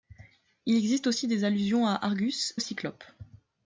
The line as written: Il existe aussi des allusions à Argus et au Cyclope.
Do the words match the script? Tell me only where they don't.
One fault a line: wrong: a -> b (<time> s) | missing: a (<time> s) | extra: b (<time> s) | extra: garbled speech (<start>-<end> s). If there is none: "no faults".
missing: et (2.5 s)